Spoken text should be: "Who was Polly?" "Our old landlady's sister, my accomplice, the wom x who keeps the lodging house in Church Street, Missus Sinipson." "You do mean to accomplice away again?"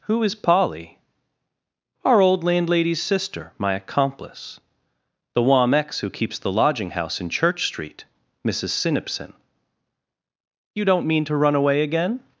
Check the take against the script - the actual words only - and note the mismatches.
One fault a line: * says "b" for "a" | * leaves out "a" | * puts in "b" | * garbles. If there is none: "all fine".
* says "is" for "was"
* says "don't" for "do"
* says "run" for "accomplice"